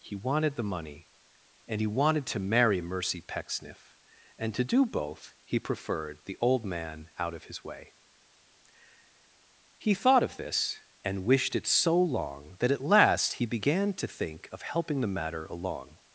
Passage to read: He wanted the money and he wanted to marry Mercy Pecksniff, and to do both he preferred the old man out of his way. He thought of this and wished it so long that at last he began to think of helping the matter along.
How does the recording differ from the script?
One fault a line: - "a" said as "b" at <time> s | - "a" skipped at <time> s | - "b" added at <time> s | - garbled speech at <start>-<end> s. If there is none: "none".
none